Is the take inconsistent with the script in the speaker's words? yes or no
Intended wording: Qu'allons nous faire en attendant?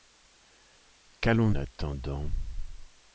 yes